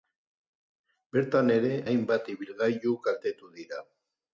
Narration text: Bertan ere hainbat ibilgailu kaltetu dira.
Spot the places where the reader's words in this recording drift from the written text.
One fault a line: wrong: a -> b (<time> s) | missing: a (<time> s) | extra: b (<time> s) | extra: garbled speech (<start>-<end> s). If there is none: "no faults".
no faults